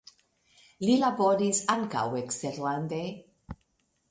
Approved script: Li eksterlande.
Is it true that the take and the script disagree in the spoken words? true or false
true